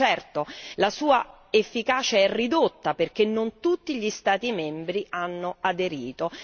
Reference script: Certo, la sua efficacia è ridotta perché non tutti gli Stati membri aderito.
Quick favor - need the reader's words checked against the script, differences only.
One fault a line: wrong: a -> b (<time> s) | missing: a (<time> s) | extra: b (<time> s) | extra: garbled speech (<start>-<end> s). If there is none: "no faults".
extra: hanno (5.1 s)